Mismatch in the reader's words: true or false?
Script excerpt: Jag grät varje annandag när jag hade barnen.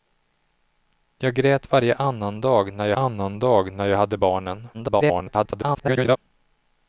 true